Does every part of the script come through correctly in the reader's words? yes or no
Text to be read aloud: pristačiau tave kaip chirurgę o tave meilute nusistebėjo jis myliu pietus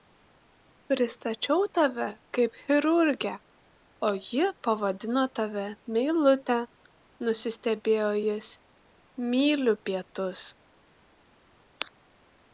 no